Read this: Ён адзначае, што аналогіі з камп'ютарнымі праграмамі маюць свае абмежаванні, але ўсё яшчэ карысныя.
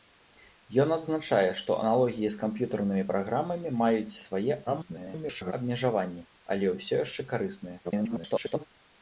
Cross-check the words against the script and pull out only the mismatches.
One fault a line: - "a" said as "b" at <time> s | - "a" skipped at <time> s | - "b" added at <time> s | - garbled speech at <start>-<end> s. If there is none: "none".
- garbled speech at 4.7-5.5 s
- garbled speech at 7.8-8.7 s